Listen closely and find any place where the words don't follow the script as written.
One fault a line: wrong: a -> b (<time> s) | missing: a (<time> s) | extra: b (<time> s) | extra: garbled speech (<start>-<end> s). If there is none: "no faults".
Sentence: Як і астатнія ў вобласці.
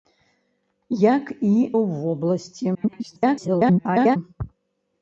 missing: астатнія (1.5 s)
extra: garbled speech (2.7-4.2 s)